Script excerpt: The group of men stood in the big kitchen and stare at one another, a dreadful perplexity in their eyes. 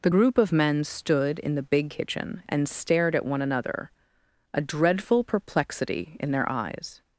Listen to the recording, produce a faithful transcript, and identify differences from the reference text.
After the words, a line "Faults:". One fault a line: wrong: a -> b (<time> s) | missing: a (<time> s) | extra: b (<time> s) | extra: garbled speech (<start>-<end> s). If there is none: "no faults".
The group of men stood in the big kitchen and stared at one another, a dreadful perplexity in their eyes.
Faults:
wrong: stare -> stared (2.7 s)